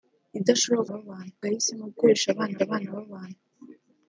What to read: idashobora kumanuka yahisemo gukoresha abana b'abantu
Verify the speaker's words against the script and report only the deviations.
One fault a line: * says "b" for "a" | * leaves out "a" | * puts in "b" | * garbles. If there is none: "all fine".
* says "b'abantu" for "kumanuka"
* puts in "abana"